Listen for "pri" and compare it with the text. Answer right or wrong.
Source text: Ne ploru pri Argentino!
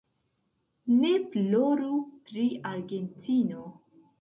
right